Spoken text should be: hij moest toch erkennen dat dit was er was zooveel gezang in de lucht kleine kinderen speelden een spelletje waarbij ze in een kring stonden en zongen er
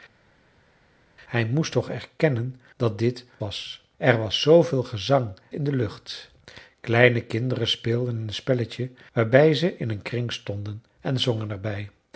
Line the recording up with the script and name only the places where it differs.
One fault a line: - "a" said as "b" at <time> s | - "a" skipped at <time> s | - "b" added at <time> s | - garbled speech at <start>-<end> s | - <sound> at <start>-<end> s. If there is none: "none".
none